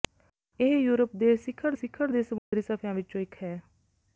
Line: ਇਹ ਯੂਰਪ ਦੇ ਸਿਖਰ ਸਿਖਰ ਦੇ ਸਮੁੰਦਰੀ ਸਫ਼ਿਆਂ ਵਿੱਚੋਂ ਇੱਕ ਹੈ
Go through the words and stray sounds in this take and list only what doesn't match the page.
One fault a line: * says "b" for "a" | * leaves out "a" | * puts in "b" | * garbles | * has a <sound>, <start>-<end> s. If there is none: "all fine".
* has a dropout, 2.4-2.5 s